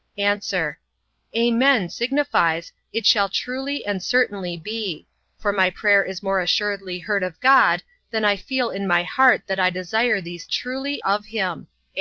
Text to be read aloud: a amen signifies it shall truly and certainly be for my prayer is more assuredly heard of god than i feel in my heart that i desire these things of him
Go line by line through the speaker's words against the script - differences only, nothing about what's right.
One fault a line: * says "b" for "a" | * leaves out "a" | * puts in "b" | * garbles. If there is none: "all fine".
* says "truly" for "things"